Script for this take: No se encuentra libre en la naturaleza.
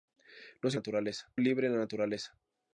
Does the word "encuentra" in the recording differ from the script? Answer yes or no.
yes